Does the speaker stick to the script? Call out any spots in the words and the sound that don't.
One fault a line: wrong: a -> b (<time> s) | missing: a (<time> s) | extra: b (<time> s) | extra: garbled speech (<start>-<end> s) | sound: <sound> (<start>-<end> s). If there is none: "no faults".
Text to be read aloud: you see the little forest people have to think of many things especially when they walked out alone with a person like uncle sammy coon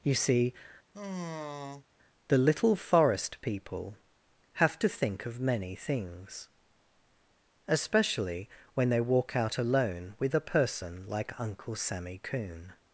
sound: sigh (0.9-1.9 s)
wrong: walked -> walk (9.0 s)